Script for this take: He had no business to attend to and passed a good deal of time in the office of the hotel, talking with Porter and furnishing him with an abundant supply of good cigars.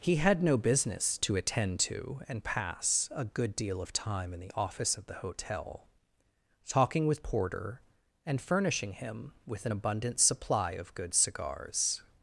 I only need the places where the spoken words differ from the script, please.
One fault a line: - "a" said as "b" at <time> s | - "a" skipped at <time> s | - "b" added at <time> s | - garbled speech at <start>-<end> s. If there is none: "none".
- "passed" said as "pass" at 2.4 s